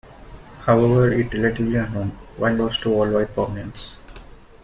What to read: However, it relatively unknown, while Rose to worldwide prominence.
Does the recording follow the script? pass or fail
pass